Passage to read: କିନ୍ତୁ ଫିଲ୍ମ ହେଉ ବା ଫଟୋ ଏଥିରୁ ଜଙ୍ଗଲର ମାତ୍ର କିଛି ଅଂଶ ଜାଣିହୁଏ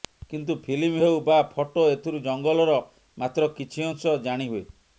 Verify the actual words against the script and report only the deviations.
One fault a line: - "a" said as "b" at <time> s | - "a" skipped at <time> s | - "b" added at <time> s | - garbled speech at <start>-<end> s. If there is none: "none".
none